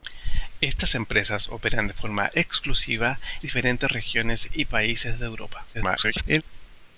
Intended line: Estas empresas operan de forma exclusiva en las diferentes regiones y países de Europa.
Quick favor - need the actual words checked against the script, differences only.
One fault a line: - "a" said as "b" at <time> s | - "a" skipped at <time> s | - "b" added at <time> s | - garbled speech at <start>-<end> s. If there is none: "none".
- "en las" skipped at 3.2 s
- garbled speech at 5.7-6.4 s